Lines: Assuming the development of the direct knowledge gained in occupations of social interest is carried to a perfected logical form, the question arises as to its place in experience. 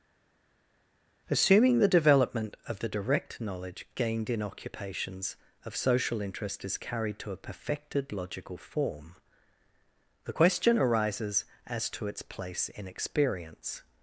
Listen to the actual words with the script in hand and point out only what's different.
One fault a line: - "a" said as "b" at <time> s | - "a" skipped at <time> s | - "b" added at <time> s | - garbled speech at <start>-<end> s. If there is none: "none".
none